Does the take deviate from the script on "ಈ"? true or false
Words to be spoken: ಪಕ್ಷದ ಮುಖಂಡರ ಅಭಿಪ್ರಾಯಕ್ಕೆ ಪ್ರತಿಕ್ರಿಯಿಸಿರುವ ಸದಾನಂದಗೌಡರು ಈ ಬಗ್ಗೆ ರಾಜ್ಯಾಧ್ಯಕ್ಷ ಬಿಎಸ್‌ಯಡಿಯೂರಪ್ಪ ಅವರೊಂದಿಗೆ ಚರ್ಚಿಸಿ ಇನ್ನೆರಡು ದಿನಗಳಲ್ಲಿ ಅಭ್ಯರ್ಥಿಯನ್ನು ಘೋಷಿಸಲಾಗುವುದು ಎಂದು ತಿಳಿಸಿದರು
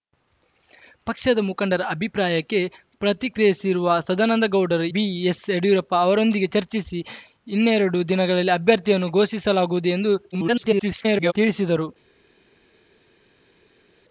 true